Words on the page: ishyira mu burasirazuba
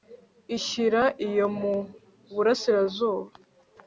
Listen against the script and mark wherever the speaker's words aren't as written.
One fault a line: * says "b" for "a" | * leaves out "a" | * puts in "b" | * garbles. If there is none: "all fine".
* puts in "iyo"